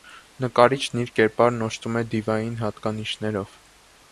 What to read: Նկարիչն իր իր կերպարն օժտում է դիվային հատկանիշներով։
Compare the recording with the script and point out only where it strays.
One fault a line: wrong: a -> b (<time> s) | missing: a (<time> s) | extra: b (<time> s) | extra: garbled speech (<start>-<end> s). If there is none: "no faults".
missing: իր (1.1 s)